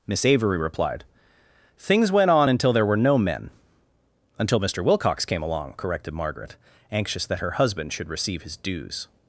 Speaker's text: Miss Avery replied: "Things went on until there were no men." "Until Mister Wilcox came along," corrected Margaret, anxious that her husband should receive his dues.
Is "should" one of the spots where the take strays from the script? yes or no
no